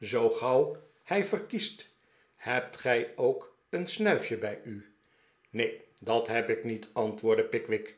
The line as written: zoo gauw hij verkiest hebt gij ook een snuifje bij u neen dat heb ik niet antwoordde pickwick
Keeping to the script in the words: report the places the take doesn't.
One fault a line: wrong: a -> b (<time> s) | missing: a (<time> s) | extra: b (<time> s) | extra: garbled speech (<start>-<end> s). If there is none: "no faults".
no faults